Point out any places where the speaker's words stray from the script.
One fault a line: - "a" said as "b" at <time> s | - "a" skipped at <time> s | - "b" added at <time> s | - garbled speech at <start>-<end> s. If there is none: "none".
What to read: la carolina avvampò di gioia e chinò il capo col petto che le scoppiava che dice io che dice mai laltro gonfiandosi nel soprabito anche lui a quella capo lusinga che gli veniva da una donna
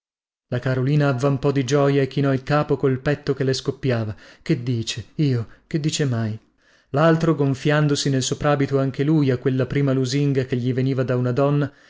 - "capo" said as "prima" at 9.7 s